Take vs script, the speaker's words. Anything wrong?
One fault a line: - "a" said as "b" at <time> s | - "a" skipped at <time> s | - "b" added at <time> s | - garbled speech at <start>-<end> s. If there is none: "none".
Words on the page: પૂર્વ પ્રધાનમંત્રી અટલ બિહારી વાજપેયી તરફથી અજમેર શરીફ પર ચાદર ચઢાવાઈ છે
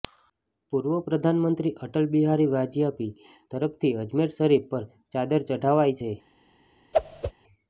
none